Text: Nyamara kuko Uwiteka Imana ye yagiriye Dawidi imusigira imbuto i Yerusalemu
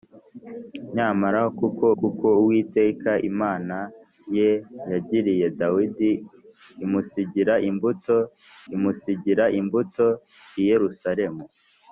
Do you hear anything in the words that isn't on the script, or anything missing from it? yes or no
yes